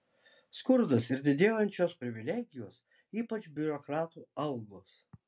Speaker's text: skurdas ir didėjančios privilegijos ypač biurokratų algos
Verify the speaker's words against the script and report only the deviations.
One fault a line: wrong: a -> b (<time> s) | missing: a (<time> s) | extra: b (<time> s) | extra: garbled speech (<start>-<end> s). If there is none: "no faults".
no faults